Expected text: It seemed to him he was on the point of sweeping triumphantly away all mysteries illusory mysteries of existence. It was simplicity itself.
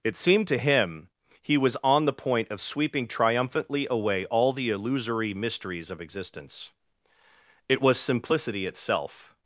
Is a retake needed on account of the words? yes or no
yes